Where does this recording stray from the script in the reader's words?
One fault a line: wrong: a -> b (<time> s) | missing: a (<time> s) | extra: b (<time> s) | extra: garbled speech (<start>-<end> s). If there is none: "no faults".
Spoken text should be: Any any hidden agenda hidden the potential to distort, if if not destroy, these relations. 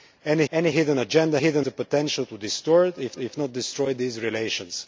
no faults